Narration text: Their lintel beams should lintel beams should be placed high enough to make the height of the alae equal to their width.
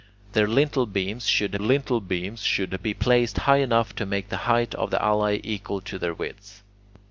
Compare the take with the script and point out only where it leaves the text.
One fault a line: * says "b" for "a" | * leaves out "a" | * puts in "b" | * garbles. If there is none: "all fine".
all fine